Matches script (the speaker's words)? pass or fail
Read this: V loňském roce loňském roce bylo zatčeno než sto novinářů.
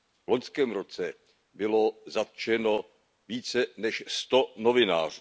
fail